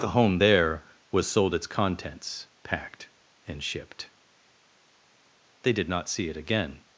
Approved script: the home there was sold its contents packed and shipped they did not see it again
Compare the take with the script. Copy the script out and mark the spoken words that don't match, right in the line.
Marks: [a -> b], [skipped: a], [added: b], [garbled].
the home there was sold its contents packed and shipped they did not see it again